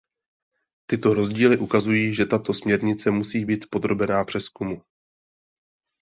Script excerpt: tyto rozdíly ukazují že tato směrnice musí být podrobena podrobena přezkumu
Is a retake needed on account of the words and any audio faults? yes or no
yes